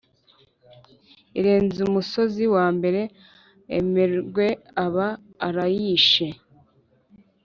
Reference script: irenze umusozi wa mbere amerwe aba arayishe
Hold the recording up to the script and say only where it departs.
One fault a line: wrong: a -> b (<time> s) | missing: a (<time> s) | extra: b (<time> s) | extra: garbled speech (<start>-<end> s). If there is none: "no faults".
no faults